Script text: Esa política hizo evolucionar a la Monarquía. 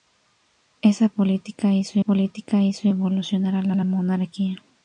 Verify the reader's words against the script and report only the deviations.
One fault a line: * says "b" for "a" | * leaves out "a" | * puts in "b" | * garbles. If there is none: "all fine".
* puts in "política hizo"
* puts in "la"